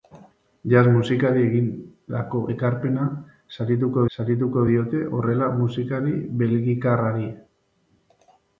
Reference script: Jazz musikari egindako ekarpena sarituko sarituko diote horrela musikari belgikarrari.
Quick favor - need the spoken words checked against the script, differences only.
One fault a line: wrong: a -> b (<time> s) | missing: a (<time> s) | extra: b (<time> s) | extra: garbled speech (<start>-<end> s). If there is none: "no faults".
no faults